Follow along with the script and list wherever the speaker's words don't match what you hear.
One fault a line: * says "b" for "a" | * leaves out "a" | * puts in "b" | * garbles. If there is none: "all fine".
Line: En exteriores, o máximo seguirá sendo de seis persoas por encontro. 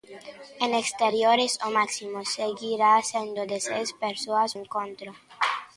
* leaves out "por"